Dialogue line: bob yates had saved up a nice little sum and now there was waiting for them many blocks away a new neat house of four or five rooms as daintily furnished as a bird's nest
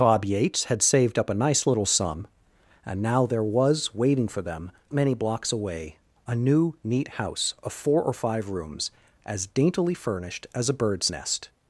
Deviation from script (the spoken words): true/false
false